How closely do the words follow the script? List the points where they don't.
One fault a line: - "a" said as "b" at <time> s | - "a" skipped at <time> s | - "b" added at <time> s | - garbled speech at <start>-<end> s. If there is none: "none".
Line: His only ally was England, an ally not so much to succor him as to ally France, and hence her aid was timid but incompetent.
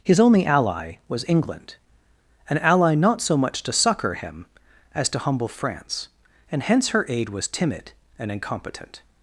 - "ally" said as "humble" at 5.2 s
- "but" said as "and" at 8.2 s